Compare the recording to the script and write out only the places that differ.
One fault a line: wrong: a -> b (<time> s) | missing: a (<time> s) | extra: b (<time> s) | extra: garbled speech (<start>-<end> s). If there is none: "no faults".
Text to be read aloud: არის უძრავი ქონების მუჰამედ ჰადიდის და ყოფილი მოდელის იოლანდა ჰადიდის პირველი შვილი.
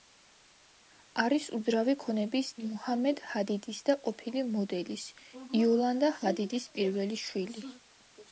no faults